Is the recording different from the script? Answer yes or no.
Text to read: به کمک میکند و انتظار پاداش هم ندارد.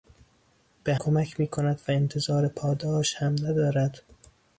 no